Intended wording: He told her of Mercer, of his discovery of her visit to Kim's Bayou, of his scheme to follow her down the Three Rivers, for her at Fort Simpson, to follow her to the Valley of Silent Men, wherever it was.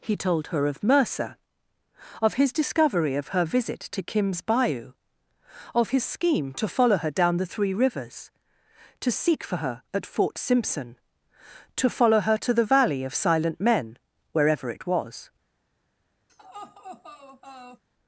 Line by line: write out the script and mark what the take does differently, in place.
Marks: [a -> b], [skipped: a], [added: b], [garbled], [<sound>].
He told her of Mercer, of his discovery of her visit to Kim's Bayou, of his scheme to follow her down the Three Rivers, [added: to seek] for her at Fort Simpson, to follow her to the Valley of Silent Men, wherever it was. [laugh]